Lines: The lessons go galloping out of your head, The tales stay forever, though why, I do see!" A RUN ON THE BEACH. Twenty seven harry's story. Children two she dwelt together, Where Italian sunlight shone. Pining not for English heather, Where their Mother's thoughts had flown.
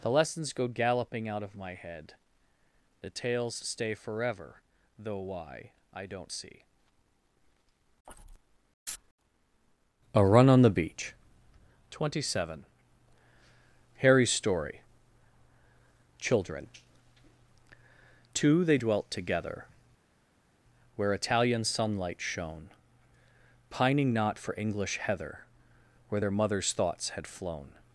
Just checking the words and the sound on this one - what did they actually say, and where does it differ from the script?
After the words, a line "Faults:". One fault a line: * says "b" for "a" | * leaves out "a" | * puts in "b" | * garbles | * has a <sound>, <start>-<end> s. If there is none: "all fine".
The lessons go galloping out of my head, The tales stay forever, though why, I don't see!" A RUN ON THE BEACH. Twenty seven harry's story. Children two they dwelt together, Where Italian sunlight shone. Pining not for English heather, Where their Mother's thoughts had flown.
Faults:
* says "my" for "your"
* says "don't" for "do"
* says "they" for "she"